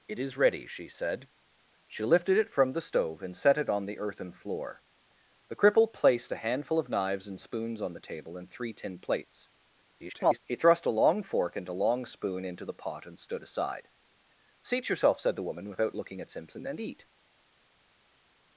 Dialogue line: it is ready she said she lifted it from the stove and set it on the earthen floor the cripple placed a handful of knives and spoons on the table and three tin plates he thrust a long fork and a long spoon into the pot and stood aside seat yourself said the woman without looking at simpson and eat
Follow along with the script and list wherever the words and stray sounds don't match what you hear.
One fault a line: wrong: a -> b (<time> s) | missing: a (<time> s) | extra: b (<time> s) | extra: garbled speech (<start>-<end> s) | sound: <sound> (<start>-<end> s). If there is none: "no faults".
extra: garbled speech (9.9-10.4 s)